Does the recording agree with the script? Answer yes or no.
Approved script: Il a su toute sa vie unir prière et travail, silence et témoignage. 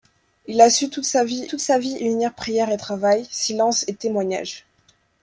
no